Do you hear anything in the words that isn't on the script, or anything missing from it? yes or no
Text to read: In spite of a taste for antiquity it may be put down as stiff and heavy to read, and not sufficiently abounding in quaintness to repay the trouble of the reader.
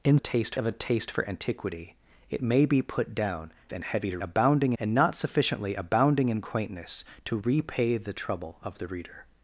yes